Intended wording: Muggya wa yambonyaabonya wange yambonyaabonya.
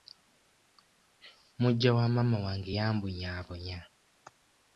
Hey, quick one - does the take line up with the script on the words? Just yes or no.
no